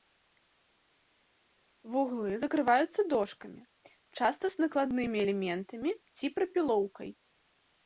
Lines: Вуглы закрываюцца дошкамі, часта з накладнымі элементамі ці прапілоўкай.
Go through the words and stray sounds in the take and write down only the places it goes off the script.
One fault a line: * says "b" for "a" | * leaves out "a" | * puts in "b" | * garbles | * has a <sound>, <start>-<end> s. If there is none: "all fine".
all fine